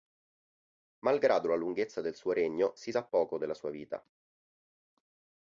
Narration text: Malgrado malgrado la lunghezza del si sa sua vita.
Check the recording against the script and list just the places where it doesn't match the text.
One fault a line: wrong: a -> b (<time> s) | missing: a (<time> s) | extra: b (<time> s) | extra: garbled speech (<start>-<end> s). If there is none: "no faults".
missing: malgrado (1.5 s)
extra: suo regno (2.1 s)
extra: poco della (3.1 s)